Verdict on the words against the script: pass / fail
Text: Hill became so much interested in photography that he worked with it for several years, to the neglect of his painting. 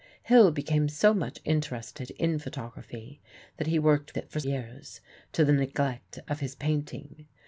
fail